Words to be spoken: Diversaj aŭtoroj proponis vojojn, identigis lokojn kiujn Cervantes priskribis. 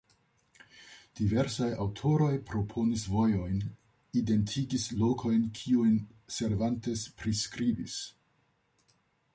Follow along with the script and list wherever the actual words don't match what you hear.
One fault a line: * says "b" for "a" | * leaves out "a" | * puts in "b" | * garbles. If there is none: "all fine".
all fine